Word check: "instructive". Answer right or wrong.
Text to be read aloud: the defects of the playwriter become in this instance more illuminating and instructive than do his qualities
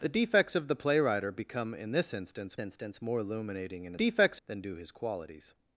wrong